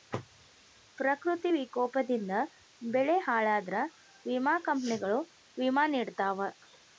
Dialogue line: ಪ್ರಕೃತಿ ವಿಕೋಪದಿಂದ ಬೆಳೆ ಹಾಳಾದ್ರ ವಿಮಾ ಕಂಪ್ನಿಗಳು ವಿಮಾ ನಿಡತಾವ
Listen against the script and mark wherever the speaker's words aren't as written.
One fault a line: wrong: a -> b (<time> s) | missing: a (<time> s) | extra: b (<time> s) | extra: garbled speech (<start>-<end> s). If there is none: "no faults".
no faults